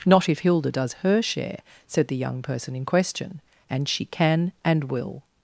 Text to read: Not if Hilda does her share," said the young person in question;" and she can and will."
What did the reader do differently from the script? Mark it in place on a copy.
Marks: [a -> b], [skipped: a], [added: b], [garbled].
Not if Hilda does her share," said the young person in question;" and she can and will."